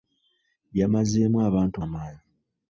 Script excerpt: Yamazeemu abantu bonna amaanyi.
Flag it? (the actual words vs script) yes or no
yes